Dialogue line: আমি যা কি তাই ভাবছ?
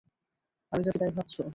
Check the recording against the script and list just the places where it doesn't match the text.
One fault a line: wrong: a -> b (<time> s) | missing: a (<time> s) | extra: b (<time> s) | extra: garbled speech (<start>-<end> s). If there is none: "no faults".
no faults